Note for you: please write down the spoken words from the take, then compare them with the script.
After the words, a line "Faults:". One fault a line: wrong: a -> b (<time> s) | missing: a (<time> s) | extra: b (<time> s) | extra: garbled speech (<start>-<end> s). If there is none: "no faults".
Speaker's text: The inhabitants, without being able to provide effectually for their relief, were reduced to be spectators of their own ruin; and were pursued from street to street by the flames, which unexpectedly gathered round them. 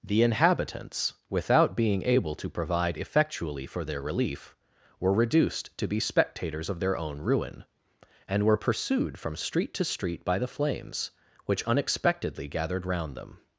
The inhabitants, without being able to provide effectually for their relief, were reduced to be spectators of their own ruin; and were pursued from street to street by the flames, which unexpectedly gathered round them.
Faults:
no faults